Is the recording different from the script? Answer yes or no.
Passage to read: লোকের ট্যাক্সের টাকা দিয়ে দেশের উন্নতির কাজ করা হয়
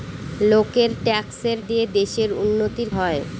yes